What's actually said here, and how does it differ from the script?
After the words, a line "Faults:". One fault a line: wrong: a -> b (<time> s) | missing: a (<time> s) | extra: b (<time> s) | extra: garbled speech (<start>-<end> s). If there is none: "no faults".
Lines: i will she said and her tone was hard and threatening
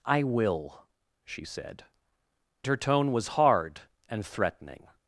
i will she said her tone was hard and threatening
Faults:
missing: and (1.9 s)